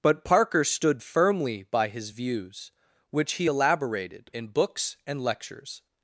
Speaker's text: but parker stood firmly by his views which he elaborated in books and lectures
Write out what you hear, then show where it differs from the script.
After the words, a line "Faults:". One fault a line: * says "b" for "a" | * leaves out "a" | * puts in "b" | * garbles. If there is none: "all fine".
but parker stood firmly by his views which he elaborated in books and lectures
Faults:
all fine